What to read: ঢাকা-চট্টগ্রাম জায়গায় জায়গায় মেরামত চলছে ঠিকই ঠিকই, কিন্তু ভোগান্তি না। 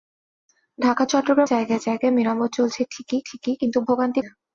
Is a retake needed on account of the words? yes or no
no